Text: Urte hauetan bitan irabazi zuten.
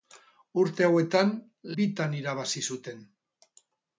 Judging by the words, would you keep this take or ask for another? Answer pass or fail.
pass